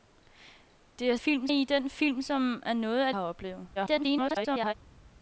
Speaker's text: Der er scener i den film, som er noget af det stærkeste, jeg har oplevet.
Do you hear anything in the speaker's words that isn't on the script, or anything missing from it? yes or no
yes